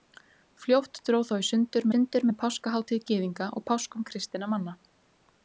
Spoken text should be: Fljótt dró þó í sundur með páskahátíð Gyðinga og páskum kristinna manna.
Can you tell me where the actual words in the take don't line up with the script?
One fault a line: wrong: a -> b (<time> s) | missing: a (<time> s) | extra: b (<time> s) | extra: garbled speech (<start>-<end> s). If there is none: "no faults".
extra: sundur (1.9 s)